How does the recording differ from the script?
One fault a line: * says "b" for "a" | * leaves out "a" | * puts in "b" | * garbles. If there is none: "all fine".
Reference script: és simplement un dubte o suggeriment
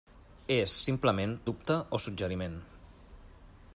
* leaves out "un"